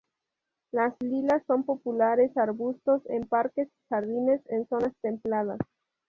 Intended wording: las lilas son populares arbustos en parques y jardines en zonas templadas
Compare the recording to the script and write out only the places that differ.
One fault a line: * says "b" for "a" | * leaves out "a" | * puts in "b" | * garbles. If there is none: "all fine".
all fine